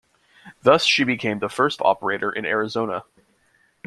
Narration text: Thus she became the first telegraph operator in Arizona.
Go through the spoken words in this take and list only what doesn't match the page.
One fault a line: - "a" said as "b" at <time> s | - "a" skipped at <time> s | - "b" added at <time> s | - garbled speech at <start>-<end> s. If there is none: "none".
- "telegraph" skipped at 1.8 s